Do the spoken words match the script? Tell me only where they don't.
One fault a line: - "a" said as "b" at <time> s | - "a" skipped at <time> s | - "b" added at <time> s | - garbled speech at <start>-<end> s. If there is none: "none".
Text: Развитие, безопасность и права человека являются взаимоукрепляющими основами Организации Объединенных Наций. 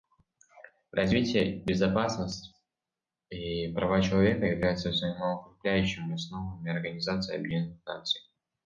none